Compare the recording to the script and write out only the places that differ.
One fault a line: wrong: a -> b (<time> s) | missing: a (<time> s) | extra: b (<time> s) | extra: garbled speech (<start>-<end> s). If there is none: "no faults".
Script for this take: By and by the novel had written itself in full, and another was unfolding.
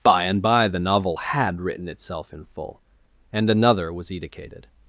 wrong: unfolding -> edicated (4.1 s)